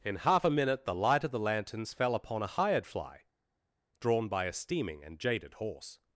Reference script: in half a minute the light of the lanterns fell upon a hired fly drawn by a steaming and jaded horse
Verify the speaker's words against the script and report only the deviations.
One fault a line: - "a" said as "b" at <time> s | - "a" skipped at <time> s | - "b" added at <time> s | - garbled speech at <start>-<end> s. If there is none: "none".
none